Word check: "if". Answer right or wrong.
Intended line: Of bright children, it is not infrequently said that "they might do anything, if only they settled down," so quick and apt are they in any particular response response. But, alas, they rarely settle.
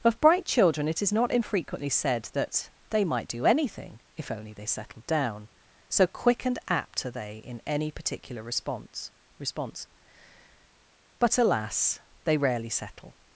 right